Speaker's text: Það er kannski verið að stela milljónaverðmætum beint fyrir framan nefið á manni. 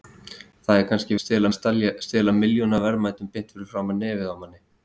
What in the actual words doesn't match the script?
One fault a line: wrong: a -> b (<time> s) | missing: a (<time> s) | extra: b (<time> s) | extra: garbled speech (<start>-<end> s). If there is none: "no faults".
wrong: verið -> stela (1.2 s)